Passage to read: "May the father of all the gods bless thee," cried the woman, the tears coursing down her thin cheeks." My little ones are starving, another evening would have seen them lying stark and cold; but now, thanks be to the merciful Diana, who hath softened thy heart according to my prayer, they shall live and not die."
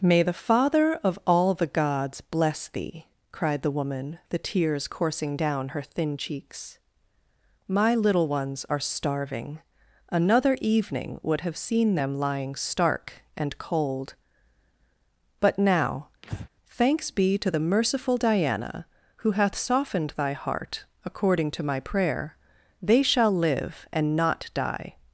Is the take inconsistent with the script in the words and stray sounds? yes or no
yes